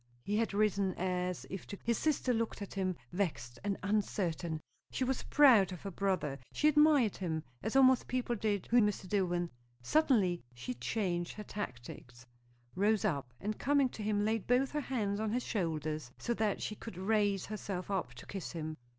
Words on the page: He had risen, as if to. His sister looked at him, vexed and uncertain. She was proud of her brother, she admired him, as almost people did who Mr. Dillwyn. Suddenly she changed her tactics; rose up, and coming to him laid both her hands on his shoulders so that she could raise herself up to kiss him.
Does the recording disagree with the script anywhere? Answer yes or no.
no